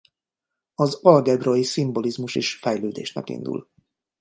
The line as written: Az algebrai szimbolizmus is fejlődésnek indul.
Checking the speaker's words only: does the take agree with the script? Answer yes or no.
yes